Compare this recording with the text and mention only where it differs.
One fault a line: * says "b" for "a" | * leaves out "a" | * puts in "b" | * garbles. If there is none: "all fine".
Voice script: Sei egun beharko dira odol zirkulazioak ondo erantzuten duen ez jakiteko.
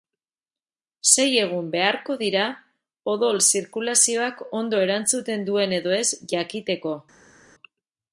* puts in "edo"